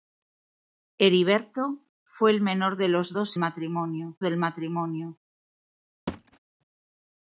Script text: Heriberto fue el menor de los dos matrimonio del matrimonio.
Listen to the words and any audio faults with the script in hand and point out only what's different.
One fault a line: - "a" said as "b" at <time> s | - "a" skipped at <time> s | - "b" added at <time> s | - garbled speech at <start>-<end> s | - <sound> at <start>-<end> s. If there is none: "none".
- thud at 6.1-6.4 s